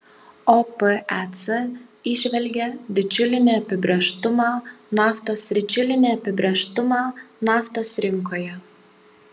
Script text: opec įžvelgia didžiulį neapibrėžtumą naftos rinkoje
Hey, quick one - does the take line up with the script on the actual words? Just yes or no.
no